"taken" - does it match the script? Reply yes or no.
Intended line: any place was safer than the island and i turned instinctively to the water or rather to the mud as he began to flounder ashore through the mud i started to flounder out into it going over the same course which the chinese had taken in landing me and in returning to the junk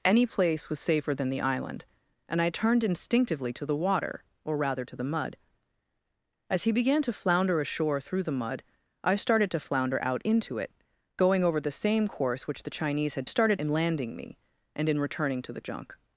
no